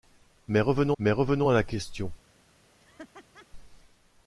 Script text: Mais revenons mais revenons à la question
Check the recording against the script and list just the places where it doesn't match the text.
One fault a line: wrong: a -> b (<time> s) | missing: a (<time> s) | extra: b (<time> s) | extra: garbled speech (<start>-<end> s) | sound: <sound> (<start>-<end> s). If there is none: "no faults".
sound: laugh (2.8-3.5 s)